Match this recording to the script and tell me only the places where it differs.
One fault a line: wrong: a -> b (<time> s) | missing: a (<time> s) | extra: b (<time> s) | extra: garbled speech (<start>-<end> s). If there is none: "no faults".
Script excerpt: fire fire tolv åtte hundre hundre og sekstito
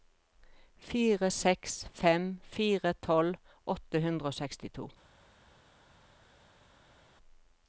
extra: seks fem (1.3 s)
missing: hundre (4.3 s)